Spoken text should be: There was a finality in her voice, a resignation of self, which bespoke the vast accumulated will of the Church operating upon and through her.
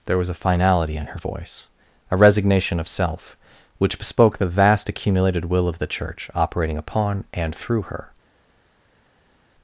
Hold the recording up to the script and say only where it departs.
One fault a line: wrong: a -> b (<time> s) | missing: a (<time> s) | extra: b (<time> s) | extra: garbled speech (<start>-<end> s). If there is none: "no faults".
no faults